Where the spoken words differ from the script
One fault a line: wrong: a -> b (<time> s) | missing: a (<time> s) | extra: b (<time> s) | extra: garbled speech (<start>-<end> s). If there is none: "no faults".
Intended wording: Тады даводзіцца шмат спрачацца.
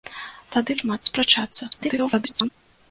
missing: даводзіцца (0.8 s)
extra: garbled speech (1.7-2.5 s)